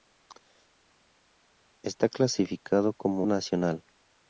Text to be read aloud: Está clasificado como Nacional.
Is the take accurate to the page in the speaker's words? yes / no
yes